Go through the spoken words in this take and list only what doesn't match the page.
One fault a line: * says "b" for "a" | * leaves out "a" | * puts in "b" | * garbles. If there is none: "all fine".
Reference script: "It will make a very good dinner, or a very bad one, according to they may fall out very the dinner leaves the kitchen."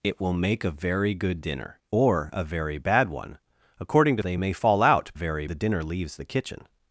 all fine